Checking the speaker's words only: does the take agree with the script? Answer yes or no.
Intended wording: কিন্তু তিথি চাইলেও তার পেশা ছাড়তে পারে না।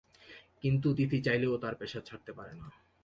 yes